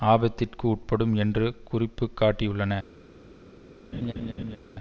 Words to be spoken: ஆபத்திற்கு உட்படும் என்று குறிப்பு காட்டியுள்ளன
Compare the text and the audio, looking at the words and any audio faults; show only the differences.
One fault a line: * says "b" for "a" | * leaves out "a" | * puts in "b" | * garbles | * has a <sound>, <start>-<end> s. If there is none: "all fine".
* has a laugh, 3.9-4.6 s